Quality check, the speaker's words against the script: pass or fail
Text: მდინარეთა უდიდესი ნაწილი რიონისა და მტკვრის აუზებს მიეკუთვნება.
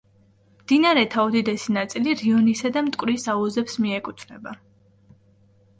pass